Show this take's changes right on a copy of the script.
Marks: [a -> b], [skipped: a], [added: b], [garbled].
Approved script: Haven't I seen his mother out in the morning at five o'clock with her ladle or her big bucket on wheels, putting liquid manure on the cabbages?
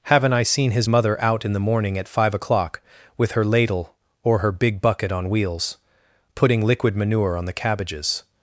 Haven't I seen his mother out in the morning at five o'clock with her ladle or her big bucket on wheels, putting liquid manure on the cabbages?